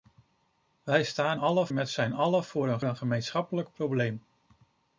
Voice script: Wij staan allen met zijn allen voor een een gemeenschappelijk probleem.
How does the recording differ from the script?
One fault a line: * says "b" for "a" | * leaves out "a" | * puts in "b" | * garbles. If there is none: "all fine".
all fine